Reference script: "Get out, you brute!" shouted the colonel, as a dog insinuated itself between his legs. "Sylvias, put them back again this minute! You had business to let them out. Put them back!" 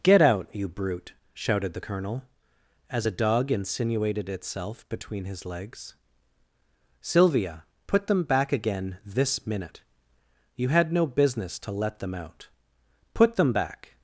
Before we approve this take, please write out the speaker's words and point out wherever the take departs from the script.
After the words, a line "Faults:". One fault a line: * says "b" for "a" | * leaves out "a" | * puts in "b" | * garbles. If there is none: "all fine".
"Get out, you brute!" shouted the colonel, as a dog insinuated itself between his legs. "Sylvia, put them back again this minute! You had no business to let them out. Put them back!"
Faults:
* says "Sylvia" for "Sylvias"
* puts in "no"